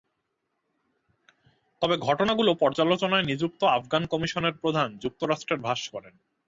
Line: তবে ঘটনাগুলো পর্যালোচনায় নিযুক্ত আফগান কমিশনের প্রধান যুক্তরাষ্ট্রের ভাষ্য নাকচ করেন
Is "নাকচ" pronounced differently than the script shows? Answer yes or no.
yes